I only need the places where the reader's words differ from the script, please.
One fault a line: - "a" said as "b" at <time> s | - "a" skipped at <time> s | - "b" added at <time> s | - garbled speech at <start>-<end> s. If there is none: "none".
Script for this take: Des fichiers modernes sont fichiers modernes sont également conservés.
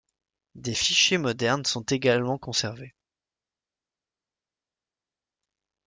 - "fichiers modernes sont" skipped at 1.8 s